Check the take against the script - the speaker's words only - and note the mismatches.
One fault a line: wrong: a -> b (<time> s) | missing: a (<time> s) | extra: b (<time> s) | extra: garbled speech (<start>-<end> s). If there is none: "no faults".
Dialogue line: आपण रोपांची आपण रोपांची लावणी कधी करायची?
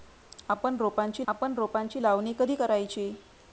no faults